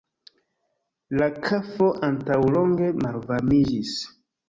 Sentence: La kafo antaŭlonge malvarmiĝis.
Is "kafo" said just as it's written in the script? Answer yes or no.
yes